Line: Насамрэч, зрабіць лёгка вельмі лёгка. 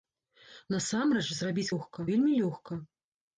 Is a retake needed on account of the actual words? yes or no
no